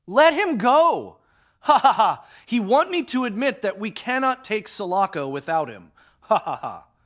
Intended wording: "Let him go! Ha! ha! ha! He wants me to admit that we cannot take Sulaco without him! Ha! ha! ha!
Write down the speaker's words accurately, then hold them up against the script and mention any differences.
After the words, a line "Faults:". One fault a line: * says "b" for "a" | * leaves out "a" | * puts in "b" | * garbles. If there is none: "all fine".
"Let him go! Ha! ha! ha! He want me to admit that we cannot take Sulaco without him! Ha! ha! ha!
Faults:
* says "want" for "wants"